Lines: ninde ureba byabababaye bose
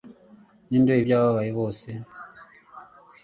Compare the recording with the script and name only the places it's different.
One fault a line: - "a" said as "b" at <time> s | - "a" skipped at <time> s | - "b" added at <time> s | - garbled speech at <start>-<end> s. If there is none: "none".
none